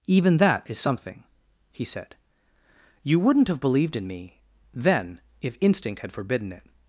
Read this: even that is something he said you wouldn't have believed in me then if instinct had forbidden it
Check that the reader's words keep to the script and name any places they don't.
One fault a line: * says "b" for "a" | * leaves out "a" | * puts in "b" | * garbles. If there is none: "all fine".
all fine